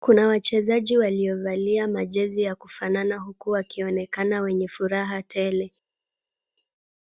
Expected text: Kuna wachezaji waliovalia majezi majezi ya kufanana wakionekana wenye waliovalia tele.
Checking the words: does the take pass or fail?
fail